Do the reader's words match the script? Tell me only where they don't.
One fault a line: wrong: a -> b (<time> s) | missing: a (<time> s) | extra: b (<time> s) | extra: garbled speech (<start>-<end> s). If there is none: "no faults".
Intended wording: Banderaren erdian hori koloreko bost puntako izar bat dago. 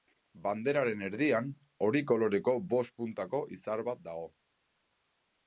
no faults